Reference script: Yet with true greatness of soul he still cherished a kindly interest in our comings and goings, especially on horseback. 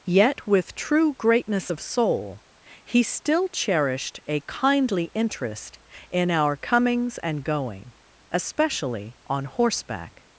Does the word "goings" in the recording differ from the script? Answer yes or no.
yes